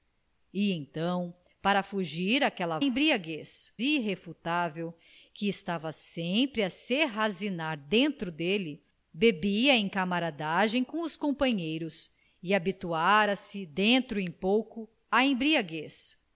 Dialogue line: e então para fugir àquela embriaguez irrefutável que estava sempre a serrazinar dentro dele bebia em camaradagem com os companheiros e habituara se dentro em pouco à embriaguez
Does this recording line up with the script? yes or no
yes